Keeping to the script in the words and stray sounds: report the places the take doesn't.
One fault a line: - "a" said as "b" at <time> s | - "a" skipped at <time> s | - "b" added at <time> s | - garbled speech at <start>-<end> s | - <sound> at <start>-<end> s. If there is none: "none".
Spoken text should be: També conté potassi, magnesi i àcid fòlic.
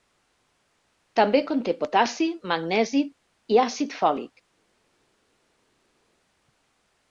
none